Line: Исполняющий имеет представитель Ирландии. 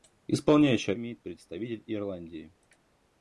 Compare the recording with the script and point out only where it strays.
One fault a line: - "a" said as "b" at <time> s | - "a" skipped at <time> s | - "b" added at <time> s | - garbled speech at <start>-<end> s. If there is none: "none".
none